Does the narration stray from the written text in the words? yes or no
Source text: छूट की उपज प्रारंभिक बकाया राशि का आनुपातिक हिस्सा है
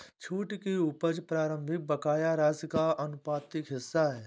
no